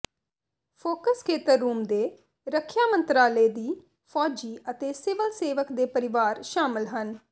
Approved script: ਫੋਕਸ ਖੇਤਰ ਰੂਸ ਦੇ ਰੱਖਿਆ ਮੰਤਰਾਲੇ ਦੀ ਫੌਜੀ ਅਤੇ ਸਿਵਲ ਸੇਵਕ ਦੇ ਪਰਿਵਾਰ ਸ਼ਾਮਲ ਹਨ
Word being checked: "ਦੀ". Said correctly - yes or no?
yes